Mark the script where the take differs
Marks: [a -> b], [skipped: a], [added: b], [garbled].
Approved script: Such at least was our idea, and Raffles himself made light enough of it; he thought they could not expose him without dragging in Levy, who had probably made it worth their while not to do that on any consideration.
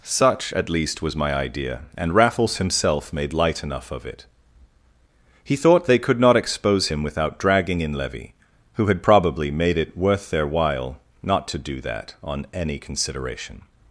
Such at least was [our -> my] idea, and Raffles himself made light enough of it; he thought they could not expose him without dragging in Levy, who had probably made it worth their while not to do that on any consideration.